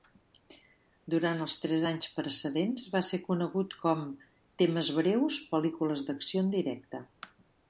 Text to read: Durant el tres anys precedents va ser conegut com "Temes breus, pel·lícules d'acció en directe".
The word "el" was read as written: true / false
false